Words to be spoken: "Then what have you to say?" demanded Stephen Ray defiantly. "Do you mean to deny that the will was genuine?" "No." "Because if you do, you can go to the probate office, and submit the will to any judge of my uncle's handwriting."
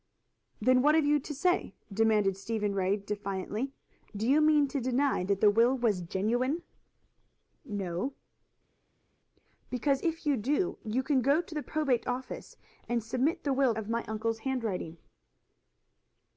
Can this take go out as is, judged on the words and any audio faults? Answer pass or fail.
fail